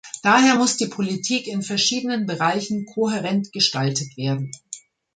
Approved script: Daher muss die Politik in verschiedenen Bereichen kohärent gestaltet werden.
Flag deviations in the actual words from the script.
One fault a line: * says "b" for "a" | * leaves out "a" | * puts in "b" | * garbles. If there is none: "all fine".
all fine